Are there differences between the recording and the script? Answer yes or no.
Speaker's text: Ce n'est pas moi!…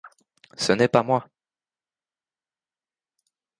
no